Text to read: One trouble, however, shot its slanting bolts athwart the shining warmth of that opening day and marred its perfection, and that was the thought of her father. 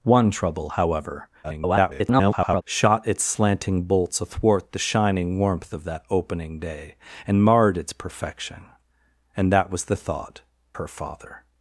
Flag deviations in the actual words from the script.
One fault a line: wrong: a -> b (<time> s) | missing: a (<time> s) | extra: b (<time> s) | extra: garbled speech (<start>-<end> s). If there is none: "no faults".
extra: garbled speech (1.4-2.6 s)
missing: of (10.4 s)